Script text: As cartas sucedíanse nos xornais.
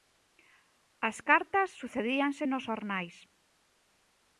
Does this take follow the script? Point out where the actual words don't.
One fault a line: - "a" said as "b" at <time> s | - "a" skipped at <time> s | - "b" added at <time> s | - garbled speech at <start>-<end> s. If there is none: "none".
none